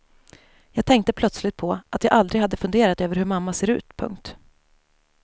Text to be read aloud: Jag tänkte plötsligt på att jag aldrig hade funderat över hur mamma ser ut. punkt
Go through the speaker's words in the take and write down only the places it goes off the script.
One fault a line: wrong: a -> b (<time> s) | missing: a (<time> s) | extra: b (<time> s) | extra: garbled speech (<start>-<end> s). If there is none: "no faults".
no faults